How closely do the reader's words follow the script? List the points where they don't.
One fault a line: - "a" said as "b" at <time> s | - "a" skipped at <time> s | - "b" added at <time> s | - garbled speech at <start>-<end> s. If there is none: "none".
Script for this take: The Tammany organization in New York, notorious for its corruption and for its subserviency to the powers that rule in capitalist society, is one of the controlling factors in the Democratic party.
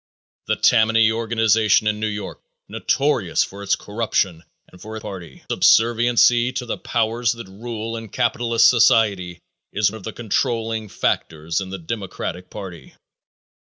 - "its" said as "party" at 5.0 s
- "one" skipped at 9.9 s